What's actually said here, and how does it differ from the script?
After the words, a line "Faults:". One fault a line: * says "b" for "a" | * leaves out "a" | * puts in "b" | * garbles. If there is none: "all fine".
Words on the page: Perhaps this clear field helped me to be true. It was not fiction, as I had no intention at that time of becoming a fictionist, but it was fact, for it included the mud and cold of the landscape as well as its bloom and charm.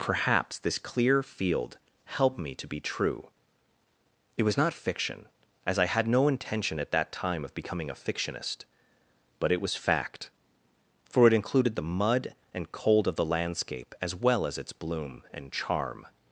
Perhaps this clear field helped me to be true. It was not fiction, as I had no intention at that time of becoming a fictionist, but it was fact, for it included the mud and cold of the landscape as well as its bloom and charm.
Faults:
all fine